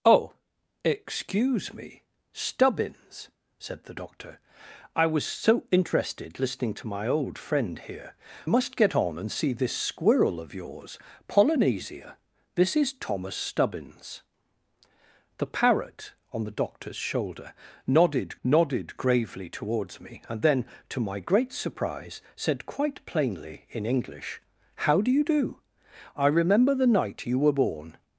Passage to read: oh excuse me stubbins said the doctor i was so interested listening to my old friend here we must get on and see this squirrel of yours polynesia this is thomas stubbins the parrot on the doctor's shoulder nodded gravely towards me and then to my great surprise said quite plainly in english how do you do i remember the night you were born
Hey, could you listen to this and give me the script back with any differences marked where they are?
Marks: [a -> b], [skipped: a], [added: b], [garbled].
oh excuse me stubbins said the doctor i was so interested listening to my old friend here [skipped: we] must get on and see this squirrel of yours polynesia this is thomas stubbins the parrot on the doctor's shoulder nodded [added: nodded] gravely towards me and then to my great surprise said quite plainly in english how do you do i remember the night you were born